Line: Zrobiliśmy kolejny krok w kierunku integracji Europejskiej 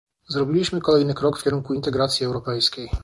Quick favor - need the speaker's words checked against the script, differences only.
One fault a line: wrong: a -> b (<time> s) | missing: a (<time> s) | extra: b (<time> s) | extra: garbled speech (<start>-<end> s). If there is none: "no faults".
no faults